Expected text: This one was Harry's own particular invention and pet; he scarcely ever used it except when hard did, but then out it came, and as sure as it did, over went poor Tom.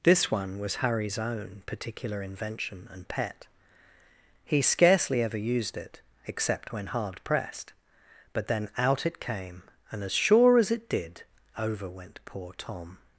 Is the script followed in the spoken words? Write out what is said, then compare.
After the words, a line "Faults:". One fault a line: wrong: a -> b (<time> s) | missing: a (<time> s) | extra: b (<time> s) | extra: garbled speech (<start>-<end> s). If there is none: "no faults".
This one was Harry's own particular invention and pet; he scarcely ever used it except when hard pressed, but then out it came, and as sure as it did, over went poor Tom.
Faults:
wrong: did -> pressed (7.2 s)